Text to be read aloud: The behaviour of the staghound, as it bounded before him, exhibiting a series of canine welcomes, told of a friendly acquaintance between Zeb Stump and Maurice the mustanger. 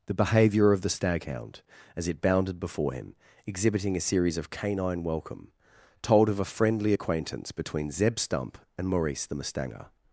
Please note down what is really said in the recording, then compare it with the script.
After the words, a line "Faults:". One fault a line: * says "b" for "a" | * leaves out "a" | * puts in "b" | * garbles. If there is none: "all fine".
The behaviour of the staghound, as it bounded before him, exhibiting a series of canine welcome, told of a friendly acquaintance between Zeb Stump and Maurice the mustanger.
Faults:
* says "welcome" for "welcomes"